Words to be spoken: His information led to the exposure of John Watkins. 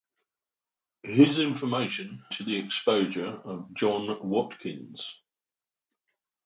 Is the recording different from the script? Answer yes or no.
yes